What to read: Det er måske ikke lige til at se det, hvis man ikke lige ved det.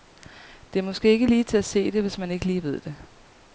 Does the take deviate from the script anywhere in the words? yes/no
no